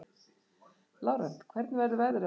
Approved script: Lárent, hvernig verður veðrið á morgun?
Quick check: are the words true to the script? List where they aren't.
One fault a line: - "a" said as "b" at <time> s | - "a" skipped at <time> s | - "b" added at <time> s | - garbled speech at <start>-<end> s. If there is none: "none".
none